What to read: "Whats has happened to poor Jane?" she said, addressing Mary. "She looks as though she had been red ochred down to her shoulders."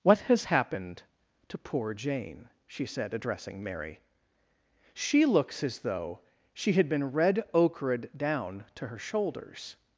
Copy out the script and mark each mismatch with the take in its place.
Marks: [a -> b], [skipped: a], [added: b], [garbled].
["Whats -> What] has happened to poor Jane?" she said, addressing Mary. "She looks as though she had been red ochred down to her shoulders."